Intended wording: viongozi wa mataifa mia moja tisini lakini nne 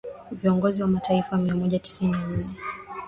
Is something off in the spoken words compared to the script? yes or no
yes